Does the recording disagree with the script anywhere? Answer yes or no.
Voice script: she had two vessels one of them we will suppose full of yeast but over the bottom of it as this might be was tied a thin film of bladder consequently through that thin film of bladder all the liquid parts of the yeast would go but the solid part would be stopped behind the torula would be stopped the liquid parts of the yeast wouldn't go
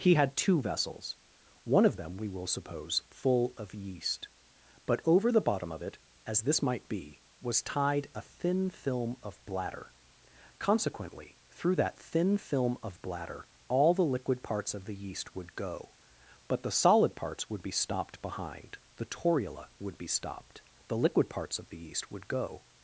yes